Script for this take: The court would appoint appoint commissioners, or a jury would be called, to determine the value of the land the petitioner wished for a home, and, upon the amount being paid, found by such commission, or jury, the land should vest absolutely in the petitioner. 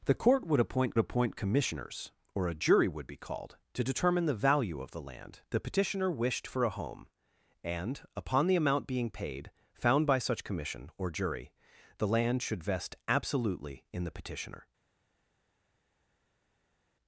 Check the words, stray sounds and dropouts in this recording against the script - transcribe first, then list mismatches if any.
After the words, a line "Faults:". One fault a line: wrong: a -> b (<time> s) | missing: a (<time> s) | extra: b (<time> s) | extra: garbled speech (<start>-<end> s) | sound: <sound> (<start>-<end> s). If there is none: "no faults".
The court would appoint appoint commissioners, or a jury would be called, to determine the value of the land the petitioner wished for a home, and, upon the amount being paid, found by such commission, or jury, the land should vest absolutely in the petitioner.
Faults:
no faults